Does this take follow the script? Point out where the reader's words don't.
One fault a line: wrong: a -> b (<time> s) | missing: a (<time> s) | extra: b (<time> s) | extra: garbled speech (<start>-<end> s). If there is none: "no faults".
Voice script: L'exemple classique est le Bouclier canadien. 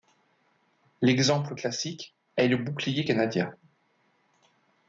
no faults